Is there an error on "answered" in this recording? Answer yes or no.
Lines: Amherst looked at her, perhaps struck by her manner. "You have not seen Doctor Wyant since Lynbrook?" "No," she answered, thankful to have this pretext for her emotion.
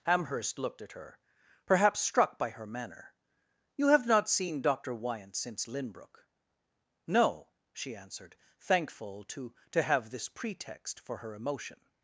no